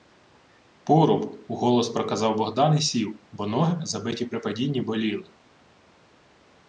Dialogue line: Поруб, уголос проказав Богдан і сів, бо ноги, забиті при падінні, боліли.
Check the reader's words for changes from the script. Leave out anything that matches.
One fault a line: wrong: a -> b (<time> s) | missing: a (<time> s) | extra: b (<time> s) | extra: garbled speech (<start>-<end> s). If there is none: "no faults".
no faults